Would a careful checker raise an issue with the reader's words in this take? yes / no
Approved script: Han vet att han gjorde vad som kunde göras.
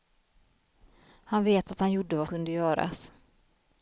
yes